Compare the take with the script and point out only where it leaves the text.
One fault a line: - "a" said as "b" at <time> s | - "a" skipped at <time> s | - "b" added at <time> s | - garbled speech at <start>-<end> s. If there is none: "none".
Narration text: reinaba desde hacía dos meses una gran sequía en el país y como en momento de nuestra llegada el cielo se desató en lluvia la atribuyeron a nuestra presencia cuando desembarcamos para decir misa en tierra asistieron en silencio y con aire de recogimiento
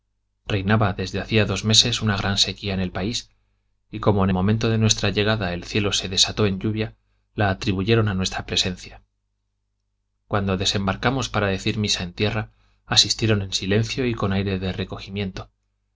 none